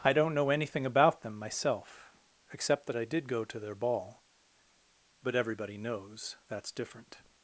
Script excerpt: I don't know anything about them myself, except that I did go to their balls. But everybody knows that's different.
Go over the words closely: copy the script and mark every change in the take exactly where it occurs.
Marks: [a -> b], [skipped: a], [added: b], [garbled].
I don't know anything about them myself, except that I did go to their [balls. -> ball] But everybody knows that's different.